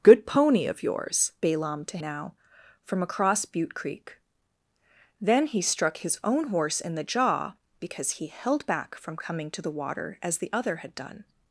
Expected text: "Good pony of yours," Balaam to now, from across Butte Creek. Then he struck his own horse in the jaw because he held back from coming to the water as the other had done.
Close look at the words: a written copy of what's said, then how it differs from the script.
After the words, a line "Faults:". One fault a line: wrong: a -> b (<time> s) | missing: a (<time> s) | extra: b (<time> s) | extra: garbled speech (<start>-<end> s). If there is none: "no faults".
"Good pony of yours," Balaam to now, from across Butte Creek. Then he struck his own horse in the jaw because he held back from coming to the water as the other had done.
Faults:
no faults